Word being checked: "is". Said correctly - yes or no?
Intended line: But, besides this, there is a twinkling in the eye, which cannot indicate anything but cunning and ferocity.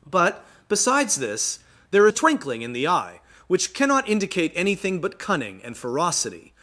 no